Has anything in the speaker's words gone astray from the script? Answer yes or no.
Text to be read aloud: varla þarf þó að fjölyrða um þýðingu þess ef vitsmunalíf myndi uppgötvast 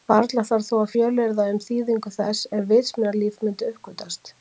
no